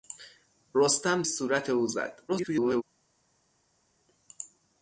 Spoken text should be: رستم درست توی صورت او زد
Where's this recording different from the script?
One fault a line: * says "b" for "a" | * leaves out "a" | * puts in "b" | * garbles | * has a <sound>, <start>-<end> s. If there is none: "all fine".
* leaves out "درست توی"
* garbles